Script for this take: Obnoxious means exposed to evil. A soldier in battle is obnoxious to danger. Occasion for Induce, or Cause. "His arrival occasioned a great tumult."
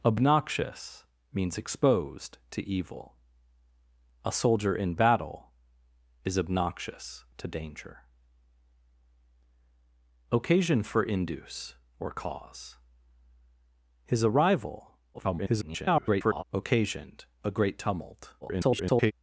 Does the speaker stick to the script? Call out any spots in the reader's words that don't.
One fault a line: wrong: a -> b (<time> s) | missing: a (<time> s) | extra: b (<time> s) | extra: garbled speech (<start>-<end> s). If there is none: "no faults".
extra: garbled speech (15.1-16.4 s)
extra: garbled speech (18.4-19.1 s)